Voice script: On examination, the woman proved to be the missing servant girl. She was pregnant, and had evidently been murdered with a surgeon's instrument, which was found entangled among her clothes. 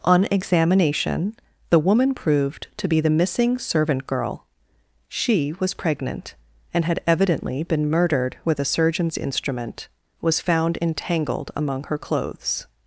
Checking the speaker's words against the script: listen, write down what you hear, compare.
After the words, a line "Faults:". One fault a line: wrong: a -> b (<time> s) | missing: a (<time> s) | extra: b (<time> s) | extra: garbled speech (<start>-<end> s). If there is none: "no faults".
On examination, the woman proved to be the missing servant girl. She was pregnant, and had evidently been murdered with a surgeon's instrument, was found entangled among her clothes.
Faults:
missing: which (9.9 s)